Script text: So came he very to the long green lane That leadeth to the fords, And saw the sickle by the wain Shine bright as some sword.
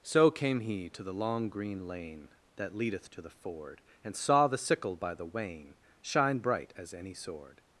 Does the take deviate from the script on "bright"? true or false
false